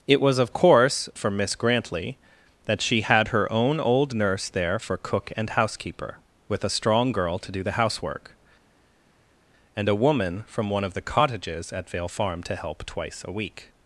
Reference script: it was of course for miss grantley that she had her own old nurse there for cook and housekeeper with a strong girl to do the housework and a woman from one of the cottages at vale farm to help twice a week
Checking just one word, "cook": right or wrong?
right